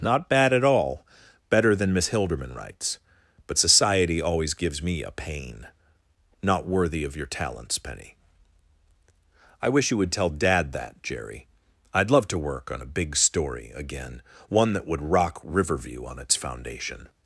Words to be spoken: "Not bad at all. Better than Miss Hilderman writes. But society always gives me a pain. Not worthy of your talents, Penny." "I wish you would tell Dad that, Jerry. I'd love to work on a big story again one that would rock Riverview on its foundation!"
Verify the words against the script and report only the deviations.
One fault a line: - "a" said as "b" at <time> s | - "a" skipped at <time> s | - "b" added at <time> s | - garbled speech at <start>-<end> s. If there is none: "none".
none